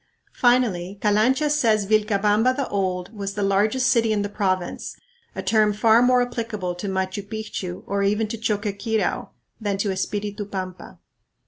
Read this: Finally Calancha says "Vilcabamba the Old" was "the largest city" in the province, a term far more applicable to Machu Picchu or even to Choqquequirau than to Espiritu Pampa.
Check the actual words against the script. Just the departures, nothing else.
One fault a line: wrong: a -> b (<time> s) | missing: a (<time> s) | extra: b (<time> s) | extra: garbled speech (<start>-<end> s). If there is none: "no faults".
no faults